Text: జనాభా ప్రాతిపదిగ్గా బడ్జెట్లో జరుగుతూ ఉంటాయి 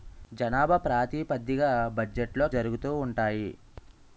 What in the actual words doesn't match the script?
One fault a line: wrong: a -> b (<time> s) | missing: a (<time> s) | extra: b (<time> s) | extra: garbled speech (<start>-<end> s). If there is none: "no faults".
no faults